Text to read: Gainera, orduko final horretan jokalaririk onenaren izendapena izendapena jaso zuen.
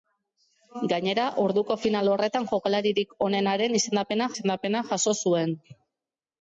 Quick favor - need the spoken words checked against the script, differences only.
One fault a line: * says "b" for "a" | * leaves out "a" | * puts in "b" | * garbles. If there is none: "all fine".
all fine